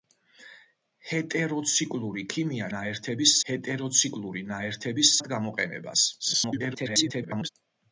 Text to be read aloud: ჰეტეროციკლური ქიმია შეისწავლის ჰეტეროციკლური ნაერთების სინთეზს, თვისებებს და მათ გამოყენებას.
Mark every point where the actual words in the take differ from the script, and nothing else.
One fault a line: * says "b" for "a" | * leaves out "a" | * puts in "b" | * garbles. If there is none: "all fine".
* says "ნაერთების" for "შეისწავლის"
* leaves out "სინთეზს თვისებებს და"
* garbles